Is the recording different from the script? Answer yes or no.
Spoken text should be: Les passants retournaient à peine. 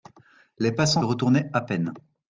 no